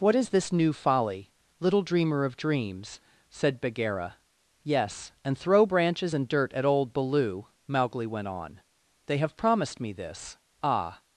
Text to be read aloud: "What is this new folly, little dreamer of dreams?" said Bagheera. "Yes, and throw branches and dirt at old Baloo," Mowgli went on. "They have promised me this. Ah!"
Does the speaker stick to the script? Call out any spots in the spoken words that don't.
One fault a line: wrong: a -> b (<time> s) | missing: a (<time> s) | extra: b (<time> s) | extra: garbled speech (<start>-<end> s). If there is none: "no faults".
no faults